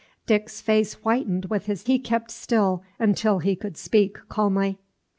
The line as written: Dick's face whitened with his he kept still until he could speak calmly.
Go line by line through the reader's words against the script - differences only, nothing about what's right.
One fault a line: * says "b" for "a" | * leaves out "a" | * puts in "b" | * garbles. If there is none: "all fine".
all fine